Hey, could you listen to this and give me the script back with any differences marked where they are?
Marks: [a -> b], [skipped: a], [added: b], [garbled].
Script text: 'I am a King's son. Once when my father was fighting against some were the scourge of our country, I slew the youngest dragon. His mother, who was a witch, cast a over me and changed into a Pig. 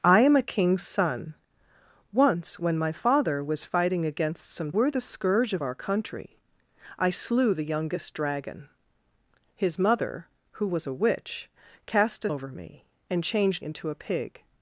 'I am a King's son. Once when my father was fighting against some were the scourge of our country, I slew the youngest dragon. His mother, who was a witch, cast a over me and changed into a Pig.